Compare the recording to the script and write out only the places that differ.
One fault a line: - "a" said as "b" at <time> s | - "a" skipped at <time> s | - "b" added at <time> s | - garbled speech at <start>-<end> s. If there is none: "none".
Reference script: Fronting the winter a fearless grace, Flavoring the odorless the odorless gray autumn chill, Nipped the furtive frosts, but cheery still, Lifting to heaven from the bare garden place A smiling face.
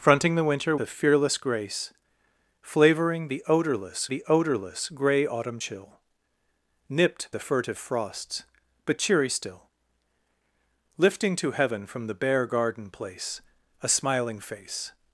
none